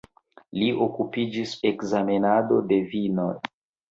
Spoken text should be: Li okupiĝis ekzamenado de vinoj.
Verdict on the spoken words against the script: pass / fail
pass